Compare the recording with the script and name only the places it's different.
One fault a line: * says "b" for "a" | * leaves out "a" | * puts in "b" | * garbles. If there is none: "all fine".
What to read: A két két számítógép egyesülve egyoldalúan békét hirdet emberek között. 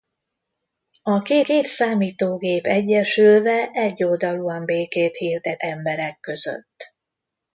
all fine